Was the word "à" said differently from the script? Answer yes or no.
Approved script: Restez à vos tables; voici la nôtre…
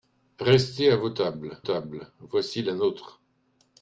no